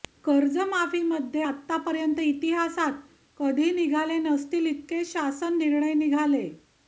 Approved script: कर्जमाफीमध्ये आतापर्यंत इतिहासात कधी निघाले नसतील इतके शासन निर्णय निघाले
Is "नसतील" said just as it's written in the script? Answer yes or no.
yes